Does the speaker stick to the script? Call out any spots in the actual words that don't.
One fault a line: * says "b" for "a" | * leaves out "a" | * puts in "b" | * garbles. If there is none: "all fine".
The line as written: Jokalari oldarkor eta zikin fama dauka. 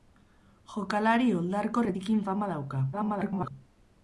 * leaves out "eta"
* garbles